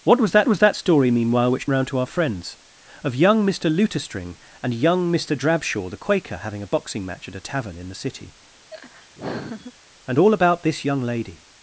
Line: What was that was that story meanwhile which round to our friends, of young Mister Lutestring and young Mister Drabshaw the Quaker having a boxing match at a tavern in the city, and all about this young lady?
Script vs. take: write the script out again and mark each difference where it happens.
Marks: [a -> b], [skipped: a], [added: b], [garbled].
What was that was that story meanwhile which round to our friends, of young Mister Lutestring and young Mister Drabshaw the Quaker having a boxing match at a tavern in the city, and all about this young lady?